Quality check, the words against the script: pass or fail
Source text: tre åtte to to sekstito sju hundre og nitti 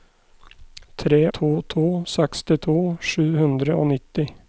fail